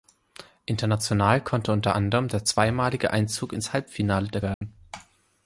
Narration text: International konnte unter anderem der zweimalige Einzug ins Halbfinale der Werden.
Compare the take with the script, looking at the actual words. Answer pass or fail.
pass